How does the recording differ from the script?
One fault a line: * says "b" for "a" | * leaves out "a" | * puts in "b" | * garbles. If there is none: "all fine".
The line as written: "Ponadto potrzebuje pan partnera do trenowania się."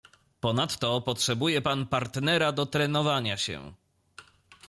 all fine